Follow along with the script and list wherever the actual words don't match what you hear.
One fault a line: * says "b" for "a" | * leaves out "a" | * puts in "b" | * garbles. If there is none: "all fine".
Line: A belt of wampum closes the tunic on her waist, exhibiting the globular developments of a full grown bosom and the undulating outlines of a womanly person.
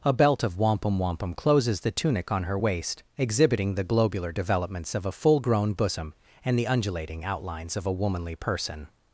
* puts in "wampum"